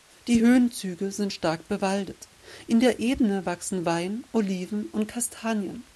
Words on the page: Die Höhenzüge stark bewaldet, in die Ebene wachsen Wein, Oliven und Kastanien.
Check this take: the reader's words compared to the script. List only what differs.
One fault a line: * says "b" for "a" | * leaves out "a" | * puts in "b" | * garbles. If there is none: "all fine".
* puts in "sind"
* says "der" for "die"